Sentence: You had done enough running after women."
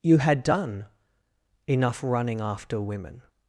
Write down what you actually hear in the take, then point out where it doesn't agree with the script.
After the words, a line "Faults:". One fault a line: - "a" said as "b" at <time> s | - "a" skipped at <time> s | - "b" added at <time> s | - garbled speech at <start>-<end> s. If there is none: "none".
You had done enough running after women."
Faults:
none